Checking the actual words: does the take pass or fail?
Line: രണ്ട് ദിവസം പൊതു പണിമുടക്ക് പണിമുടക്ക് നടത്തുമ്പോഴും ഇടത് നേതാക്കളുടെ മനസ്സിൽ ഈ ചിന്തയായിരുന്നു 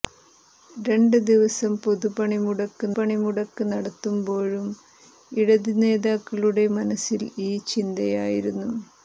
pass